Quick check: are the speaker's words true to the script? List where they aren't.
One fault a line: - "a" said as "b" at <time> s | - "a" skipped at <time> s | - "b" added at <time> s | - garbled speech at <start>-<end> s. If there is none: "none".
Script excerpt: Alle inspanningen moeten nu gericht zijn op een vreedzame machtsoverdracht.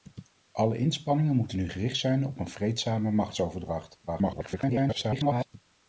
- garbled speech at 4.1-5.5 s